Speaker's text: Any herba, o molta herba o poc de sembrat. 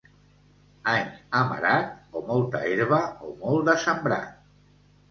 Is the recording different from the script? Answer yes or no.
yes